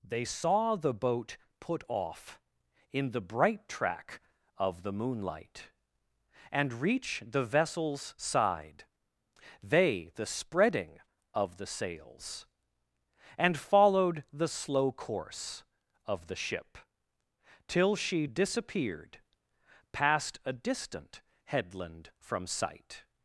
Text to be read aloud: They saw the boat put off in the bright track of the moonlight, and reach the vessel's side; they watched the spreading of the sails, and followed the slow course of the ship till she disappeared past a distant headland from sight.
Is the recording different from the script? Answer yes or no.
yes